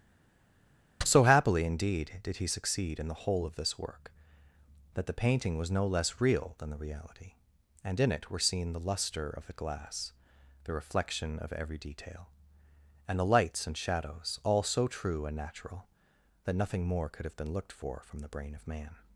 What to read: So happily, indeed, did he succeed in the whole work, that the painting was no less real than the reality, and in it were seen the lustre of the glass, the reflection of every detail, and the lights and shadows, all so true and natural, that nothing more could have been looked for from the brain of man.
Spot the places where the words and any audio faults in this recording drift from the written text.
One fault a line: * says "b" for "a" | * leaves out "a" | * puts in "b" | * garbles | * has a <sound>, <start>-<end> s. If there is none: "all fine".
* puts in "of this"